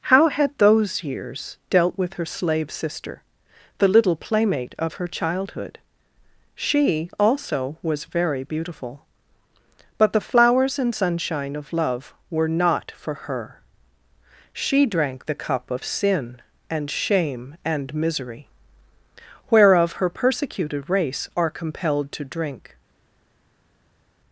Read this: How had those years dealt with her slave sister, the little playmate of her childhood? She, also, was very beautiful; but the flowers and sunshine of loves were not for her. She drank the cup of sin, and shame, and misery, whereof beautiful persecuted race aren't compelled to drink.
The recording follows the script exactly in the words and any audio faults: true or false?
false